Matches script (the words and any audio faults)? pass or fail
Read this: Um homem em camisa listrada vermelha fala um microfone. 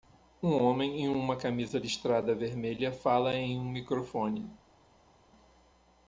fail